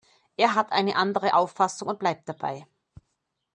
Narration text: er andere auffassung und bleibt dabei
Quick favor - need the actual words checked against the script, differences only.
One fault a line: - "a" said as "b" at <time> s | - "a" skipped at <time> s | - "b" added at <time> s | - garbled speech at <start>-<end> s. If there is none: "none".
- "hat eine" added at 0.6 s